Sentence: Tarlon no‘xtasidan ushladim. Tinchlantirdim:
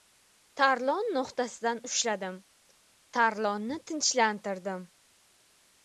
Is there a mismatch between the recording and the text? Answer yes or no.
yes